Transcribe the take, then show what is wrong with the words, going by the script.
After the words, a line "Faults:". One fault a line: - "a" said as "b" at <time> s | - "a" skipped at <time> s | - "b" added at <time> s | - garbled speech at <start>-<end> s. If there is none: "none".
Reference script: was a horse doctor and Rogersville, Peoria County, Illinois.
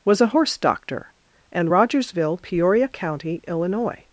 was a horse doctor and Rogersville, Peoria County, Illinois.
Faults:
none